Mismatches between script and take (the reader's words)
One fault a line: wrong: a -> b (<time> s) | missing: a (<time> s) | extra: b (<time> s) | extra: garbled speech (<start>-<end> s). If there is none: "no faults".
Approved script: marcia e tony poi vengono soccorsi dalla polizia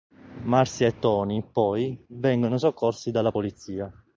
no faults